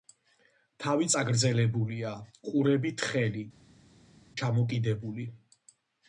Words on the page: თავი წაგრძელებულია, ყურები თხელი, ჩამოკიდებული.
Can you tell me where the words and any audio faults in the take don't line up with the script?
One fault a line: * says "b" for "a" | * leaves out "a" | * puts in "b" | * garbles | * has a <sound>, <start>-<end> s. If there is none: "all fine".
all fine